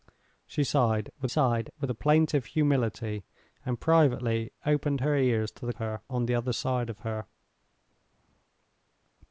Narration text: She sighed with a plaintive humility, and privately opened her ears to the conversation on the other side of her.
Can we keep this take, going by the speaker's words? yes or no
no